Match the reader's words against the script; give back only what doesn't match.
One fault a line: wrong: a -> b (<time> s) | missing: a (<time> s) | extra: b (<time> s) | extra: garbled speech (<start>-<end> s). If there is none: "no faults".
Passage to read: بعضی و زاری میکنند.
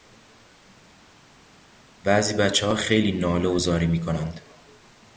extra: بچهها خیلی ناله (2.3 s)